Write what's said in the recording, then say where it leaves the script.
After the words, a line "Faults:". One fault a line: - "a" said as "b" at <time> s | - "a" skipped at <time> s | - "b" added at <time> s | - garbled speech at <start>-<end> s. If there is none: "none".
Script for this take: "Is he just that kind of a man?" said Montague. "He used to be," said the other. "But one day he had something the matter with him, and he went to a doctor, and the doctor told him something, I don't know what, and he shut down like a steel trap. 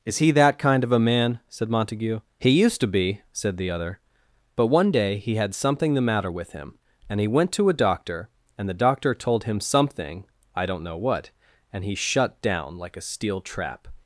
"Is he that kind of a man?" said Montague. "He used to be," said the other. "But one day he had something the matter with him, and he went to a doctor, and the doctor told him something, I don't know what, and he shut down like a steel trap.
Faults:
- "just" skipped at 0.3 s